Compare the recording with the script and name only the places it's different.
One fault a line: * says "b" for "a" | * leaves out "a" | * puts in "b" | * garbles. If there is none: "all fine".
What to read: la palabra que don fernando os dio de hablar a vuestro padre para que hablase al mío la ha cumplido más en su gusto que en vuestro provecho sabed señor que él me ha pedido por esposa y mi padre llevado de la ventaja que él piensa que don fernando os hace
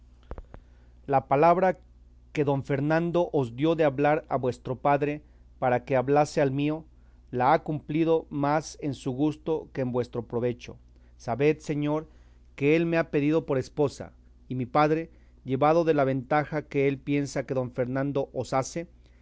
all fine